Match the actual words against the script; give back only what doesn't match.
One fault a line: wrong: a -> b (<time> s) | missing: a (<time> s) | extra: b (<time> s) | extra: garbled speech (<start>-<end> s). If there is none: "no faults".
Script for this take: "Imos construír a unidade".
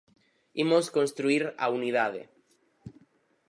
no faults